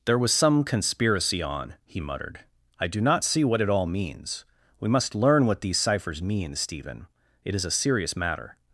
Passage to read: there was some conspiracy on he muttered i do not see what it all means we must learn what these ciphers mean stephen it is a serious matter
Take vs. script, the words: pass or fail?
pass